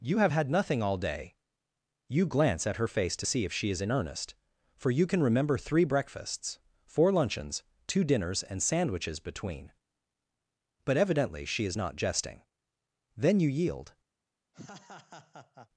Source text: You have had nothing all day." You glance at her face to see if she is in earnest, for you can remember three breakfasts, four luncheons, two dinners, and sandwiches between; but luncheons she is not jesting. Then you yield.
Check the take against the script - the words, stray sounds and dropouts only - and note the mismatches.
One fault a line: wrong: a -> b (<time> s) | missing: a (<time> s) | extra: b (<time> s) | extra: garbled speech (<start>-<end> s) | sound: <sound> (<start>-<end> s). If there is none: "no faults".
wrong: luncheons -> evidently (11.0 s)
sound: laugh (14.5-15.7 s)